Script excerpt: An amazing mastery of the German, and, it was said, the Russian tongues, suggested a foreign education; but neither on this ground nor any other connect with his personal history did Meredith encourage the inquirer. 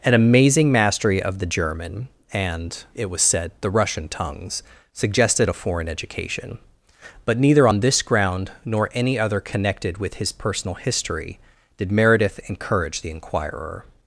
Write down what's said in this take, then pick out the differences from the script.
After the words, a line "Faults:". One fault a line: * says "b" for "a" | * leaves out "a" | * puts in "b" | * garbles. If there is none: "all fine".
An amazing mastery of the German, and, it was said, the Russian tongues, suggested a foreign education; but neither on this ground nor any other connected with his personal history did Meredith encourage the inquirer.
Faults:
* says "connected" for "connect"